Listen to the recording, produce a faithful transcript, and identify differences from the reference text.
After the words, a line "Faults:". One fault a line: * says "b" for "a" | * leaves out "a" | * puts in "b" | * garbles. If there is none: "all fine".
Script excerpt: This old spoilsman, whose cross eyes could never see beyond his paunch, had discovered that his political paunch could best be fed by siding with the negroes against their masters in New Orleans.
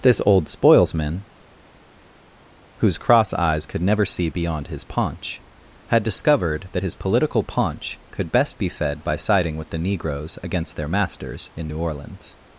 This old spoilsman, whose cross eyes could never see beyond his paunch, had discovered that his political paunch could best be fed by siding with the negroes against their masters in New Orleans.
Faults:
all fine